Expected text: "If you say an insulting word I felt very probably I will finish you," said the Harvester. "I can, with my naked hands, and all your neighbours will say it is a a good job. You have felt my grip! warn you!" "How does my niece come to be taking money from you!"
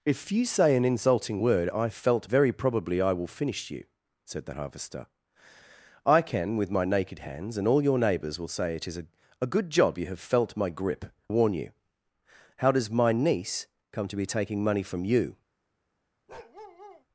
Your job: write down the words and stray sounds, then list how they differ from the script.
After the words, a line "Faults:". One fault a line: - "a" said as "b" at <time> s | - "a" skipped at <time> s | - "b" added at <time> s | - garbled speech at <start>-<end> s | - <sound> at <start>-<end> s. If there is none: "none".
"If you say an insulting word I felt very probably I will finish you," said the Harvester. "I can, with my naked hands, and all your neighbours will say it is a a good job. You have felt my grip! warn you!" "How does my niece come to be taking money from you!"
Faults:
- bark at 16.3-17.0 s